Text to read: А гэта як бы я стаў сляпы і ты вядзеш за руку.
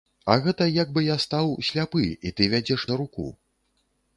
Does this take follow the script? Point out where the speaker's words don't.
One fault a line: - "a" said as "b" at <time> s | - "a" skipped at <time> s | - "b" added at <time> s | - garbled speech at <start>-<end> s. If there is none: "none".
none